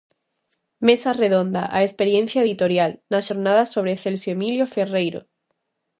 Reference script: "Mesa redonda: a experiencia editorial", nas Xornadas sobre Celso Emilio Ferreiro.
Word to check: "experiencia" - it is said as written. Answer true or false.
true